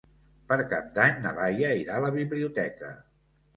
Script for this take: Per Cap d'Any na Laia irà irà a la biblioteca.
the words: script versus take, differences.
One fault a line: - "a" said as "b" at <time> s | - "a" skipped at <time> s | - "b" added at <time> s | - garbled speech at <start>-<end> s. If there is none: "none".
- "irà" skipped at 2.0 s